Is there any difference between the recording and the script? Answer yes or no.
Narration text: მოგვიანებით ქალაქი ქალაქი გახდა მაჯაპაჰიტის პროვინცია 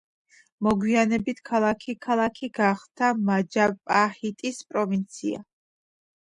no